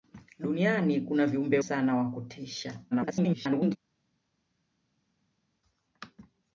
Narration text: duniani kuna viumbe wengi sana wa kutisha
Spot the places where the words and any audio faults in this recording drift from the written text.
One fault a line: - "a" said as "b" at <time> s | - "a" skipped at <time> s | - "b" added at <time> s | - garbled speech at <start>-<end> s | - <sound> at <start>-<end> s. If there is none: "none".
- "wengi" skipped at 1.6 s
- garbled speech at 2.9-3.8 s